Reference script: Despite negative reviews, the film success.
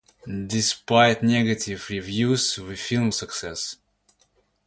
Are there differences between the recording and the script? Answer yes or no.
no